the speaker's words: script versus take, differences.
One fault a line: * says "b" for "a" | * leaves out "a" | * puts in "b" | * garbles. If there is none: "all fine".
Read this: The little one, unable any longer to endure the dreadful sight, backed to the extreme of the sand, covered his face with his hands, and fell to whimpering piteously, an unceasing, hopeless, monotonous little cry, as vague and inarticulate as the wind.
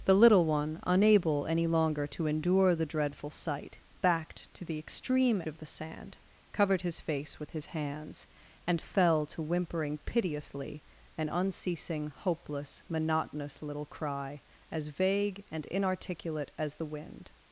all fine